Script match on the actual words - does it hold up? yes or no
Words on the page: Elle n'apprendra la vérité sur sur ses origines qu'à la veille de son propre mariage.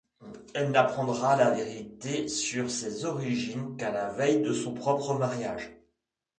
no